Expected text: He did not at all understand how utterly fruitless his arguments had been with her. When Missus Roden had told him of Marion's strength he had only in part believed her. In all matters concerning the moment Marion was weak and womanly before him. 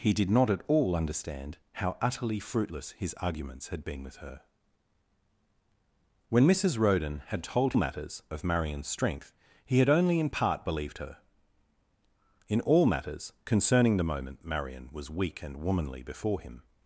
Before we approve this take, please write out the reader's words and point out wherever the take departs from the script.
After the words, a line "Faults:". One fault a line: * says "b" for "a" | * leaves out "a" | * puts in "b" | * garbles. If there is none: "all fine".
He did not at all understand how utterly fruitless his arguments had been with her. When Missus Roden had told matters of Marion's strength he had only in part believed her. In all matters concerning the moment Marion was weak and womanly before him.
Faults:
* says "matters" for "him"